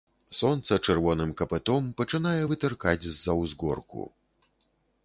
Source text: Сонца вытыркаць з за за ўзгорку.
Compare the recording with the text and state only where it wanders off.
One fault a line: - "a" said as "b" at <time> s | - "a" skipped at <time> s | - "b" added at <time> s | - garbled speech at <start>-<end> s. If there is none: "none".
- "чырвоным капытом пачынае" added at 0.8 s
- "за" skipped at 3.4 s